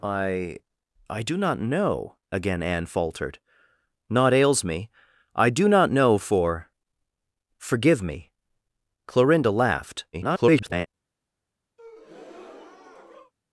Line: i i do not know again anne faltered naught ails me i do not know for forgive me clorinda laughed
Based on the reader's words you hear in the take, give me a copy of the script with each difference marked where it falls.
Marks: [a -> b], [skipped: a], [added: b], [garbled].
i i do not know again anne faltered naught ails me i do not know for forgive me clorinda laughed [garbled]